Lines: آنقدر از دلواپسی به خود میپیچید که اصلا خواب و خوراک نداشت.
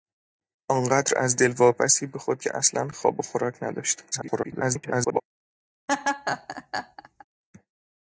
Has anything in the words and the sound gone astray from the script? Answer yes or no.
yes